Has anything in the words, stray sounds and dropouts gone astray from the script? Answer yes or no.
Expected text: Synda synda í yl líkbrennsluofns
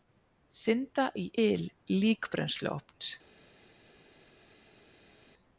yes